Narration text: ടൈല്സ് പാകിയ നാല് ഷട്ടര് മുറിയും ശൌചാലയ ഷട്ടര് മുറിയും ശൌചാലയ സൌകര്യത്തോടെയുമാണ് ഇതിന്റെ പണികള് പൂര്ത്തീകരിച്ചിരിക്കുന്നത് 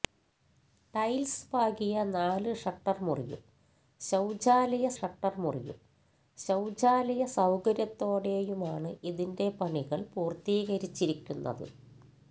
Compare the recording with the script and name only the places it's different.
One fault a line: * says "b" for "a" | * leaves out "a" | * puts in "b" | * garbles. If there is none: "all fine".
all fine